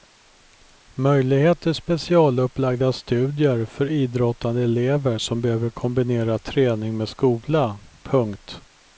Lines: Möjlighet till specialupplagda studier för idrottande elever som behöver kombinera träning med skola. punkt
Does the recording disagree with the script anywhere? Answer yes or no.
no